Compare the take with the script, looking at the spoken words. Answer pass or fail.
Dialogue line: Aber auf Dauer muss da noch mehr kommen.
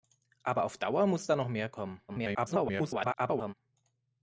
fail